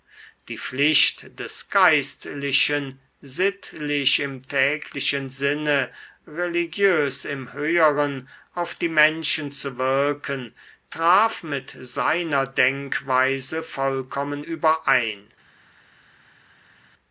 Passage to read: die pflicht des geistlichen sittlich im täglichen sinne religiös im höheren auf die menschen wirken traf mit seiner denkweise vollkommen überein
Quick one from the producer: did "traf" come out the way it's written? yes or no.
yes